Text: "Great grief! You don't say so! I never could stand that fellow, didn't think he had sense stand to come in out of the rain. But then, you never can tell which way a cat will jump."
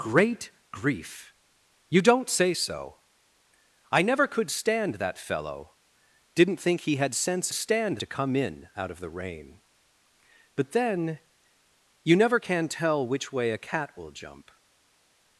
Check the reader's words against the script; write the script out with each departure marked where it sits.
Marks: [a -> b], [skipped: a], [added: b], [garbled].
"Great grief! You don't say so! I never could stand that fellow, didn't think he had sense stand to come in out of the rain. But then, you never can tell which way a cat will jump."